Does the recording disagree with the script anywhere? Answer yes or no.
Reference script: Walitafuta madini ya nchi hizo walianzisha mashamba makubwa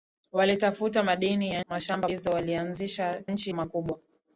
yes